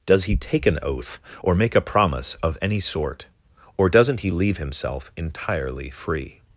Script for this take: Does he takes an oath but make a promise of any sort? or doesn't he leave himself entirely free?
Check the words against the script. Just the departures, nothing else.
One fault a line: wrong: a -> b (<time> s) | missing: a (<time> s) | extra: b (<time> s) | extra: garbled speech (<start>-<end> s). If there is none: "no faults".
wrong: takes -> take (0.3 s)
wrong: but -> or (1.4 s)